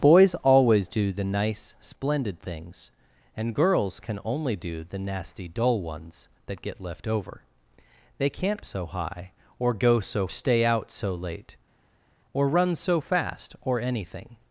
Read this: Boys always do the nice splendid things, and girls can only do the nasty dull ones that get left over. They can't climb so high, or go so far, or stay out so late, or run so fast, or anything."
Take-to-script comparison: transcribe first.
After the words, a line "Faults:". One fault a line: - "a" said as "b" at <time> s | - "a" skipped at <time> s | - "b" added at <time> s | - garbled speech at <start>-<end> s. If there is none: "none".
Boys always do the nice splendid things, and girls can only do the nasty dull ones that get left over. They can't so high, or go so stay out so late, or run so fast, or anything."
Faults:
- "climb" skipped at 8.7 s
- "far or" skipped at 10.3 s